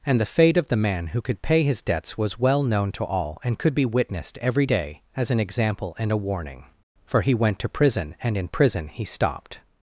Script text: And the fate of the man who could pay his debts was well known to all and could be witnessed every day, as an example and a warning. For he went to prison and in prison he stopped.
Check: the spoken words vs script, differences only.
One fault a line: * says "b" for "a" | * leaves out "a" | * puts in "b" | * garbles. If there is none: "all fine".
all fine